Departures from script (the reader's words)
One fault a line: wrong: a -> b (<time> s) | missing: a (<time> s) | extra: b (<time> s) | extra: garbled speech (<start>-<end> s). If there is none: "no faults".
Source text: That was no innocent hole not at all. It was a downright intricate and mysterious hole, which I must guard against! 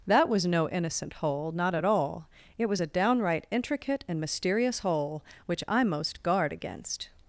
wrong: must -> most (5.8 s)